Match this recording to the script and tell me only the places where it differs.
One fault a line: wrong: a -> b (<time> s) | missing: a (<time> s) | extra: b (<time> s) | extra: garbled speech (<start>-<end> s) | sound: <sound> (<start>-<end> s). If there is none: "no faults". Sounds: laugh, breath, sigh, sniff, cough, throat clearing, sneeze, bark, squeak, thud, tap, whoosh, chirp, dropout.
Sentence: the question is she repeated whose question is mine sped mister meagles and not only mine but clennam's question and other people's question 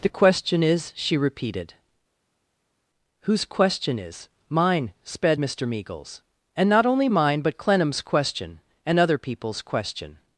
no faults